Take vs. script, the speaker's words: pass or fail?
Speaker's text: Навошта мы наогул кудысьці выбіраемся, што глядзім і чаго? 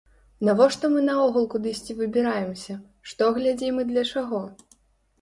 fail